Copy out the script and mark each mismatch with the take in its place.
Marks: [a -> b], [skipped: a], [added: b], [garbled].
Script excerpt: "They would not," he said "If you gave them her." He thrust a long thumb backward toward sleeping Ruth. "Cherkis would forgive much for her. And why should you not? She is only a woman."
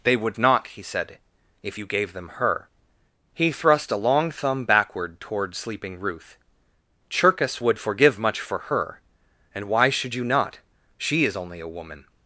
"They would not," he said "If you gave them her." He thrust a long thumb backward toward sleeping Ruth. "Cherkis would forgive much for her. And why should you not? She is only a woman."